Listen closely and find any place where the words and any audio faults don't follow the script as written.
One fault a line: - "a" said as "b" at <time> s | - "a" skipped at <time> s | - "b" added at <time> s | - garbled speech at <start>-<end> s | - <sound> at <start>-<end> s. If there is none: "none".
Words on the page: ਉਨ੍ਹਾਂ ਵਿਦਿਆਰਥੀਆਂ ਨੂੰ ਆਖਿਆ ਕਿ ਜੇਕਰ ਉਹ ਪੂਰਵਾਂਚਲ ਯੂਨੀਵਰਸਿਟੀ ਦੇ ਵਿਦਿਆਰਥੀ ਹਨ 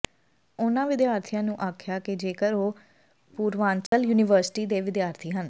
- dropout at 3.9-3.9 s